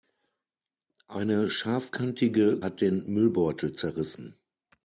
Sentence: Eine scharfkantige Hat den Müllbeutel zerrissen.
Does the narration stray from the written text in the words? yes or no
no